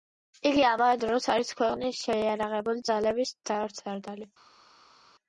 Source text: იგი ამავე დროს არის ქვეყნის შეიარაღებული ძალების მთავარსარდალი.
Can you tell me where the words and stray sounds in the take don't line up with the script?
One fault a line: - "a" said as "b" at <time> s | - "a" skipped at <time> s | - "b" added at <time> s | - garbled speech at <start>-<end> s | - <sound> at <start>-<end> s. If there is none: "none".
none